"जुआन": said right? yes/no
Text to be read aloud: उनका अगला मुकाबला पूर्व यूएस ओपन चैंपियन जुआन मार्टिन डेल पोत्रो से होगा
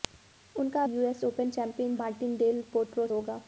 no